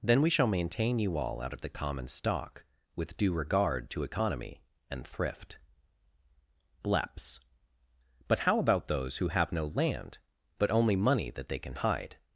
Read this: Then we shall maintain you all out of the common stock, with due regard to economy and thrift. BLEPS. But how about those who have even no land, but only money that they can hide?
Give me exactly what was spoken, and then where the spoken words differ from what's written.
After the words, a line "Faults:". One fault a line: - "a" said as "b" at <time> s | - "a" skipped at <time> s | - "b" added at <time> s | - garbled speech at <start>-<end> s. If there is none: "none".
Then we shall maintain you all out of the common stock, with due regard to economy and thrift. BLEPS. But how about those who have no land, but only money that they can hide?
Faults:
- "even" skipped at 9.5 s